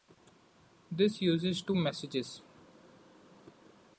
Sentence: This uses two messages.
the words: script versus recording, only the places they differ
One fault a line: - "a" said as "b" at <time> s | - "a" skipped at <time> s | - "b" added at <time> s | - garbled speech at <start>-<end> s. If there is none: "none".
none